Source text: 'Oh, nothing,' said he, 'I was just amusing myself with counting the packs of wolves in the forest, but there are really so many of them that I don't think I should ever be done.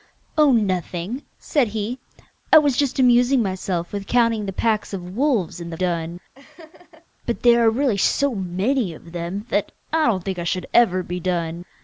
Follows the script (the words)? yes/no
no